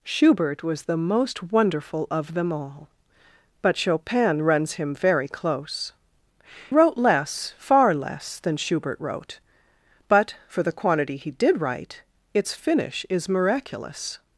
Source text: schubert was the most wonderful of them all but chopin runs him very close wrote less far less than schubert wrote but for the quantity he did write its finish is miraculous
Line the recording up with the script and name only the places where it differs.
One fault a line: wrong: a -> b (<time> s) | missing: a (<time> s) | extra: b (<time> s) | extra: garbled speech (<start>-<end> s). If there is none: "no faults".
no faults